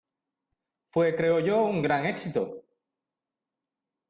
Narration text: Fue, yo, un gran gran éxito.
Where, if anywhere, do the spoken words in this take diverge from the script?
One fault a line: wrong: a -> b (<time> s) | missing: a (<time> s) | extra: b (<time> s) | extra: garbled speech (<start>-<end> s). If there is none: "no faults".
extra: creo (1.1 s)
missing: gran (2.0 s)